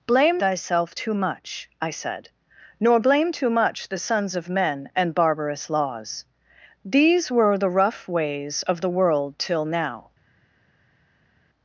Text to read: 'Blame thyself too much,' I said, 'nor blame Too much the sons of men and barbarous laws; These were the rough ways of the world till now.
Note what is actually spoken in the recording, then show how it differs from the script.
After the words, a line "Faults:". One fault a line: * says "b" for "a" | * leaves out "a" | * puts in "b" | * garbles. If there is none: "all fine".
'Blame thyself too much,' I said, 'nor blame Too much the sons of men and barbarous laws; These were the rough ways of the world till now.
Faults:
all fine